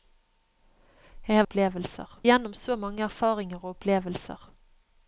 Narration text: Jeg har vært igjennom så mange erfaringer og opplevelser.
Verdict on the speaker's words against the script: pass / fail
fail